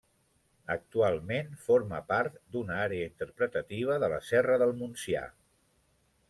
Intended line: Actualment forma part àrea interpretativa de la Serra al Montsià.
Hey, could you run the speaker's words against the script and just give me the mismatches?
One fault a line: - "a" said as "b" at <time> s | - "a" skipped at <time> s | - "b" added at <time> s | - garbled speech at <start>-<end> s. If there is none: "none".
- "d'una" added at 2.5 s
- "al" said as "del" at 4.6 s